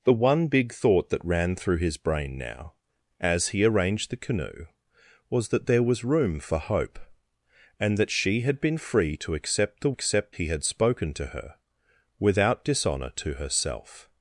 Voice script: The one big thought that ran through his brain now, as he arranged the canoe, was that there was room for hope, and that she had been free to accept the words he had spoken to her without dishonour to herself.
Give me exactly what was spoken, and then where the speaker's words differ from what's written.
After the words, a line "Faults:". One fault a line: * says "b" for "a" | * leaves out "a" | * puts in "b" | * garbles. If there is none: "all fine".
The one big thought that ran through his brain now, as he arranged the canoe, was that there was room for hope, and that she had been free to accept the accept he had spoken to her without dishonour to herself.
Faults:
* says "accept" for "words"